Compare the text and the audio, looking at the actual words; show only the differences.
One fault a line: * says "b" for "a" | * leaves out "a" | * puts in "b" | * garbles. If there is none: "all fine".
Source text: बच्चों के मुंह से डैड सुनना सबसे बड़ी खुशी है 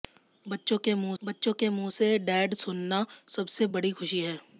* puts in "बच्चों के मुंह"